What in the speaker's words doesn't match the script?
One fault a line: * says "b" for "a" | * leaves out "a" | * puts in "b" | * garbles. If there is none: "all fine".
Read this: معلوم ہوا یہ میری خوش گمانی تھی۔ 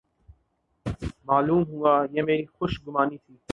all fine